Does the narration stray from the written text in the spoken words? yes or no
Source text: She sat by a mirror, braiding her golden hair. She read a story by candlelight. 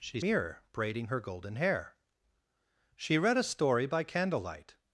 yes